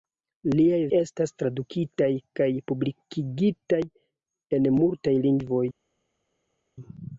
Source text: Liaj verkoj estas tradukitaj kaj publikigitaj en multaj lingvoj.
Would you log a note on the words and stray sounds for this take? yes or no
yes